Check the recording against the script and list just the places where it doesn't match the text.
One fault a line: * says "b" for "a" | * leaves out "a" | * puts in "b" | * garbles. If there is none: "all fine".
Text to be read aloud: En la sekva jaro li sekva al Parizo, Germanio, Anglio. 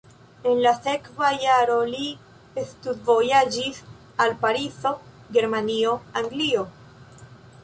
* says "studvojaĝis" for "sekva"